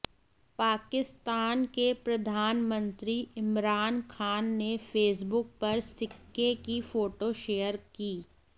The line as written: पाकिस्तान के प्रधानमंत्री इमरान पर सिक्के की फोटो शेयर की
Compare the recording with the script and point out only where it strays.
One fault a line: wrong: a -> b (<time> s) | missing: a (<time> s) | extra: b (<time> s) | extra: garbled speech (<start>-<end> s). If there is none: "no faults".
extra: खान ने फेसबुक (4.1 s)